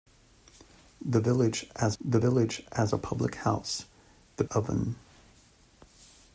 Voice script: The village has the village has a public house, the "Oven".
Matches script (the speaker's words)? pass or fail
pass